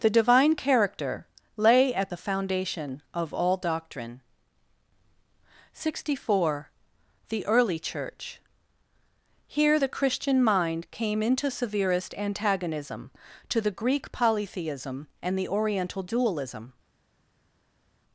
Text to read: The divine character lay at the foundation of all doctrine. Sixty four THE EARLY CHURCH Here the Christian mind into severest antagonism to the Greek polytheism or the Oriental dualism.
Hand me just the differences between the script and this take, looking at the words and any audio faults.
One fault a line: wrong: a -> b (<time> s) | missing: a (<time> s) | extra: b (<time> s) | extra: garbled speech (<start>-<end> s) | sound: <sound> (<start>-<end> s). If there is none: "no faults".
extra: came (10.9 s)
wrong: or -> and (15.2 s)